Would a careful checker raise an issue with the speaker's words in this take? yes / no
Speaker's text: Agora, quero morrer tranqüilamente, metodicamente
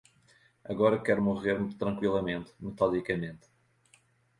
no